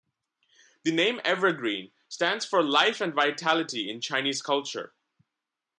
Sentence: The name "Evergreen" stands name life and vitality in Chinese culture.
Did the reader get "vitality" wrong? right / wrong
right